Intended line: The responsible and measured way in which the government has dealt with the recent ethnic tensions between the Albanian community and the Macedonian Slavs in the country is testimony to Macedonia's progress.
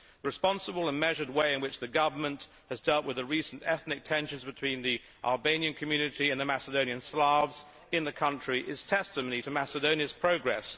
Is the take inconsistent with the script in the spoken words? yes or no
no